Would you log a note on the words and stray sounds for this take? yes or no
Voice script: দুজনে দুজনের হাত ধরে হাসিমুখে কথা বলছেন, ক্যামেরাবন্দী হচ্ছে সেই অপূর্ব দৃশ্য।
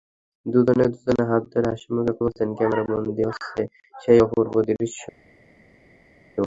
yes